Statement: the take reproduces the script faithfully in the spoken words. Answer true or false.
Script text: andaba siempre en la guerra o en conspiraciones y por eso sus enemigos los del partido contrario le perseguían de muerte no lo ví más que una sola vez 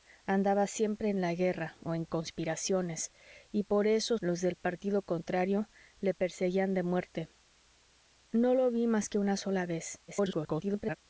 false